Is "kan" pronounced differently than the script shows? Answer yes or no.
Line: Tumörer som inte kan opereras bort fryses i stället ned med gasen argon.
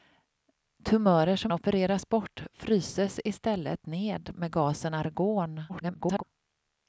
yes